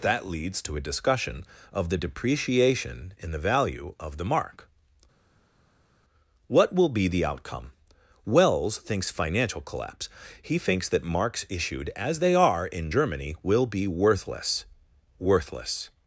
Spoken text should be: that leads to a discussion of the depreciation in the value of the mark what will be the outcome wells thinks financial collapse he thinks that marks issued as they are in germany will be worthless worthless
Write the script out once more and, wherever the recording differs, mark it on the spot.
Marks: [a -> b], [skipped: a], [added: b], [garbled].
that leads to a discussion of the depreciation in the value of the mark what will be the outcome wells thinks financial collapse he thinks that marks issued as they are in germany will be worthless worthless